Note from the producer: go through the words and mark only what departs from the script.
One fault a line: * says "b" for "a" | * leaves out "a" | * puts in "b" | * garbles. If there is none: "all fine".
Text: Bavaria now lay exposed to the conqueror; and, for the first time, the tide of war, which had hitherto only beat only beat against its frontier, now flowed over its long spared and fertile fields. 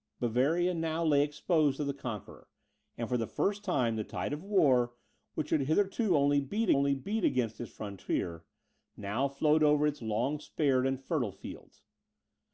all fine